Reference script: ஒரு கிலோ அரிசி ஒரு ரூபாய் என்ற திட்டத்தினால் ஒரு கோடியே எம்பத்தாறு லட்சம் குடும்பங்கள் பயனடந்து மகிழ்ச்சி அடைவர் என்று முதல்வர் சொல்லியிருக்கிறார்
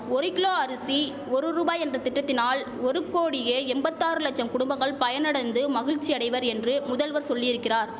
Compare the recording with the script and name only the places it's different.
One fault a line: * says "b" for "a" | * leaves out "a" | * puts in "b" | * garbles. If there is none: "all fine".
all fine